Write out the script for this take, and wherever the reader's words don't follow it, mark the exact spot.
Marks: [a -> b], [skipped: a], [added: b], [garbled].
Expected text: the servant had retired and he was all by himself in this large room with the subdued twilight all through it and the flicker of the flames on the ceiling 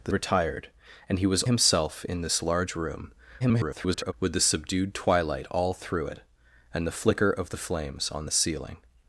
the [skipped: servant had] retired and he was [skipped: all by] himself in this large room [garbled] with the subdued twilight all through it and the flicker of the flames on the ceiling